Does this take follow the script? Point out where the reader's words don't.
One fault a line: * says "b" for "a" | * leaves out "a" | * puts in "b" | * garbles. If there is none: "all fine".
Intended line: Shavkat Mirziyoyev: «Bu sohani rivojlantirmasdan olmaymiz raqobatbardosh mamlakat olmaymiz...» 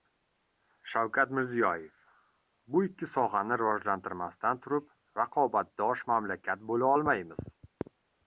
* puts in "ikki"
* says "turib" for "olmaymiz"
* puts in "bo‘la"